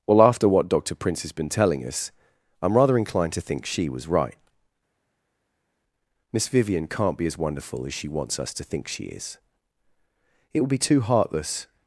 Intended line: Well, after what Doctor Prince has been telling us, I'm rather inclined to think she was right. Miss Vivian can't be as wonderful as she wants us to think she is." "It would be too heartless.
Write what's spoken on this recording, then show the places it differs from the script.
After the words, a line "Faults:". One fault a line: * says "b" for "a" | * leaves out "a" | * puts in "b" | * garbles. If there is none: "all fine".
Well, after what Doctor Prince has been telling us, I'm rather inclined to think she was right. Miss Vivian can't be as wonderful as she wants us to think she is." "It would be too heartless.
Faults:
all fine